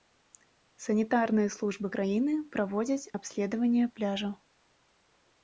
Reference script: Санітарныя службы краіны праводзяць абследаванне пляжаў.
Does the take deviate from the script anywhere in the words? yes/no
no